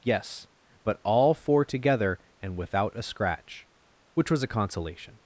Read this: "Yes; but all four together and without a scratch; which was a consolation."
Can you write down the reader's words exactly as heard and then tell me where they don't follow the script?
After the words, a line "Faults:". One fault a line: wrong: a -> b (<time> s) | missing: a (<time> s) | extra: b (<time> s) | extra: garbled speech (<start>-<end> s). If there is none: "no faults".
"Yes; but all four together and without a scratch; which was a consolation."
Faults:
no faults